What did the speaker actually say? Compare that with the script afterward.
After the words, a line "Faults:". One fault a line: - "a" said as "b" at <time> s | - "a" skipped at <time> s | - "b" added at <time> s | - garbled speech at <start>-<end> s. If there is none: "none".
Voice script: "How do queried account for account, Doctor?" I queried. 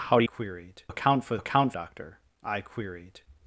"How do queried account for account, Doctor?" I queried.
Faults:
none